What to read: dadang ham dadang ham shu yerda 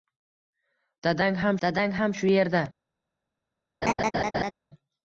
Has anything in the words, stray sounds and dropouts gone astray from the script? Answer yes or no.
yes